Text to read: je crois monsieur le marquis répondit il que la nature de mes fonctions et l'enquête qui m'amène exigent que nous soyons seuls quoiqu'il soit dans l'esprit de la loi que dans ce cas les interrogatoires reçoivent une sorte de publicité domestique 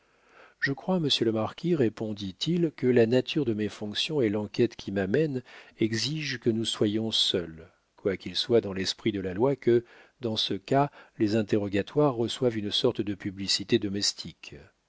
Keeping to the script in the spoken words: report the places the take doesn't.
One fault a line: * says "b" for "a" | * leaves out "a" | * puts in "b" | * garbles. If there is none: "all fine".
all fine